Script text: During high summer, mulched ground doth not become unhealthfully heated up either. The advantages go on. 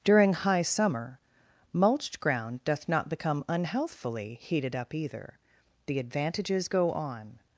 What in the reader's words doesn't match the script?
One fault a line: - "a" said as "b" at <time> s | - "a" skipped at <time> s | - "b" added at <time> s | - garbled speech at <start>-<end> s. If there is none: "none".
none